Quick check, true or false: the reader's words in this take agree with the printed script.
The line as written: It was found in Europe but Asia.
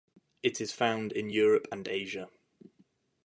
false